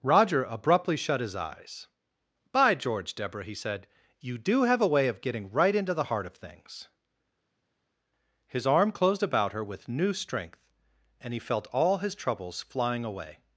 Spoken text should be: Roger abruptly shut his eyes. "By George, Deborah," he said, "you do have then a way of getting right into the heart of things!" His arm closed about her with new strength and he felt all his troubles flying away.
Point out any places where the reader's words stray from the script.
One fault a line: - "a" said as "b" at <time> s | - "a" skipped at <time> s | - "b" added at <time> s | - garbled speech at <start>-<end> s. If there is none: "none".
- "then" skipped at 4.8 s